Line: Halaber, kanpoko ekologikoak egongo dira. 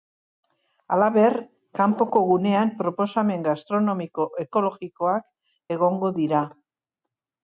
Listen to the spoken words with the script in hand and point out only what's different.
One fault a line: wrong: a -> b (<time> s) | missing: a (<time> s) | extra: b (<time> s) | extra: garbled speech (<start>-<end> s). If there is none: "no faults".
extra: gunean proposamen gastronomiko (2.3 s)